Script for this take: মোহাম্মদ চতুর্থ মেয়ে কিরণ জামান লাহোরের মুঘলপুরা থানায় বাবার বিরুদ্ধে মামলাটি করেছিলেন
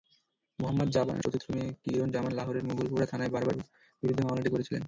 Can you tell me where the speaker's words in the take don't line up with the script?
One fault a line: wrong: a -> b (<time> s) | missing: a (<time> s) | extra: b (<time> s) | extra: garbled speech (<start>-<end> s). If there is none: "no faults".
no faults